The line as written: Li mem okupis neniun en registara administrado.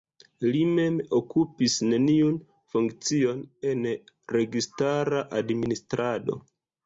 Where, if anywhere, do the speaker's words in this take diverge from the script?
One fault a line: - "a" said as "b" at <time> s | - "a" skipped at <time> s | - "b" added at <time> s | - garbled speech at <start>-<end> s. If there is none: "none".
- "funkcion" added at 2.8 s